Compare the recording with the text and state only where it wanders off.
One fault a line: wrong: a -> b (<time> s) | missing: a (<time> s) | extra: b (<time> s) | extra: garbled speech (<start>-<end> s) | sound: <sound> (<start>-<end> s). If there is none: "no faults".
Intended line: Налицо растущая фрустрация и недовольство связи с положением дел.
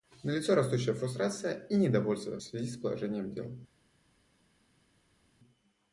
no faults